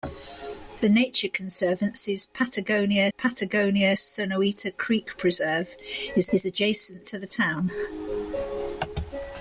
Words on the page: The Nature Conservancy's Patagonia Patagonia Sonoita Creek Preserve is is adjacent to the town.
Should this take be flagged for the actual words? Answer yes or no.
no